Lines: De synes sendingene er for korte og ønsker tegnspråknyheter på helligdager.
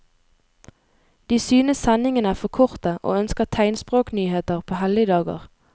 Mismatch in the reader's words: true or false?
false